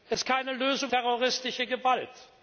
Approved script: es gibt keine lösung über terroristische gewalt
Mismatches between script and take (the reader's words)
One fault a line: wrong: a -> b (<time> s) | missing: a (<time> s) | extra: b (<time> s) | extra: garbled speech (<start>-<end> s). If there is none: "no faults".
missing: gibt (0.2 s)
missing: über (0.9 s)